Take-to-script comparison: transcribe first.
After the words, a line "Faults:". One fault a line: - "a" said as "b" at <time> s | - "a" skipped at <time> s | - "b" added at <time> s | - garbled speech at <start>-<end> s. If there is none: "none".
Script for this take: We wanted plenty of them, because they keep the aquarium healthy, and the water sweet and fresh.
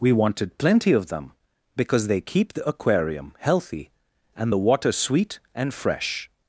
We wanted plenty of them, because they keep the aquarium healthy, and the water sweet and fresh.
Faults:
none